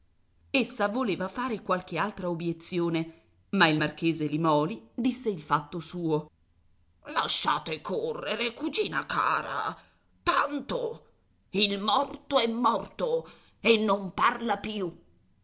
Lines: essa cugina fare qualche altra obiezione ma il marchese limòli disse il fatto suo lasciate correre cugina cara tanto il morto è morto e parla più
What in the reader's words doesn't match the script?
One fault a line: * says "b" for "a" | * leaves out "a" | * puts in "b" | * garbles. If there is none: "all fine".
* says "voleva" for "cugina"
* puts in "non"